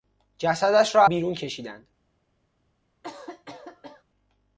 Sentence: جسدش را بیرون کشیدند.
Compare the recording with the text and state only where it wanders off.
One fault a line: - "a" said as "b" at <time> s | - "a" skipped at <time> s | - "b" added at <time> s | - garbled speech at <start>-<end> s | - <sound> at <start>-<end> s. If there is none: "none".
- cough at 3.0-4.0 s